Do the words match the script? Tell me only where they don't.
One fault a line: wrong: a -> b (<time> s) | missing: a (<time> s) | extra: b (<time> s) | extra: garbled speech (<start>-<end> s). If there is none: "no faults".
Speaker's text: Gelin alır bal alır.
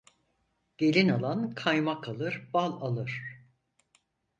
extra: alan kaymak (1.1 s)